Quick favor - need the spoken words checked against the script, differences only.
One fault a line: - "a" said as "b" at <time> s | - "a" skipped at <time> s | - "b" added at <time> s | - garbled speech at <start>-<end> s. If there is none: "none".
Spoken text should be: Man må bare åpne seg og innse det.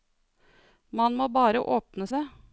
- "seg og innse" skipped at 2.1 s